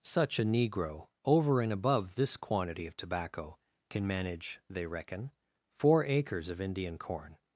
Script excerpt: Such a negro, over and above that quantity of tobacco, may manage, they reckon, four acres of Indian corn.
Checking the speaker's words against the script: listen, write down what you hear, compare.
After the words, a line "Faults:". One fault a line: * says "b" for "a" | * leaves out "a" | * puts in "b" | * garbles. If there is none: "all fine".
Such a negro, over and above this quantity of tobacco, can manage, they reckon, four acres of Indian corn.
Faults:
* says "this" for "that"
* says "can" for "may"